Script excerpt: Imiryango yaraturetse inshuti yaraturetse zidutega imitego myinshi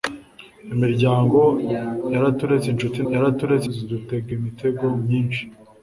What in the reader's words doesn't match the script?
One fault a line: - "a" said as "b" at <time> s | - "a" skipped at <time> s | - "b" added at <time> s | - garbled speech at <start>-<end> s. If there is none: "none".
none